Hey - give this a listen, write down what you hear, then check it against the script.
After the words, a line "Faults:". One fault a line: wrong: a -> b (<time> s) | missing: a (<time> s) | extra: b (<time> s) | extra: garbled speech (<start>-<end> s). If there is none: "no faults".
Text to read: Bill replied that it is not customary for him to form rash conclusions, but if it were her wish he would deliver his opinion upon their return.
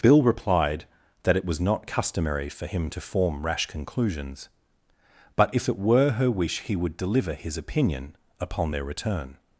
Bill replied that it was not customary for him to form rash conclusions, but if it were her wish he would deliver his opinion upon their return.
Faults:
wrong: is -> was (1.4 s)